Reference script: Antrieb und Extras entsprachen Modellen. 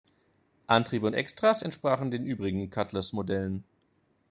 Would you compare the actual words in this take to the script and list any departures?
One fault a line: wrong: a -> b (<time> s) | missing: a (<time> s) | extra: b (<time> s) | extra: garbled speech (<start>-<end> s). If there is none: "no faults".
extra: den übrigen Cutlass (2.1 s)